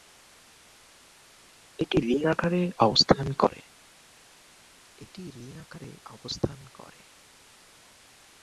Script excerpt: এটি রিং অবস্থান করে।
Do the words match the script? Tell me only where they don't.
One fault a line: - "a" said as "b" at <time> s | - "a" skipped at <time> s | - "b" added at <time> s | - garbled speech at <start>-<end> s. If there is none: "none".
- "আকারে" added at 2.2 s